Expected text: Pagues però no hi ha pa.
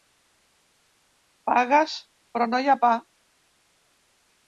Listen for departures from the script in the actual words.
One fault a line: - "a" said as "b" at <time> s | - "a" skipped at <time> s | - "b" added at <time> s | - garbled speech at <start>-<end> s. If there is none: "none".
none